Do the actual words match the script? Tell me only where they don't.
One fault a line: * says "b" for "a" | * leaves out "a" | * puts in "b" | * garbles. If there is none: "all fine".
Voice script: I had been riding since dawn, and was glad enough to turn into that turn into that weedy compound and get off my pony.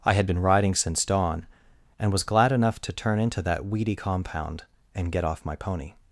* leaves out "turn into that"